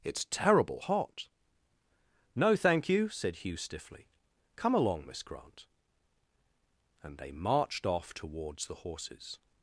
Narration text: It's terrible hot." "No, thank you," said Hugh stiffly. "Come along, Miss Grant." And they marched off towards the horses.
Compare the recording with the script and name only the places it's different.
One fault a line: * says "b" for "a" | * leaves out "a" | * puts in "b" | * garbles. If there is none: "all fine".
all fine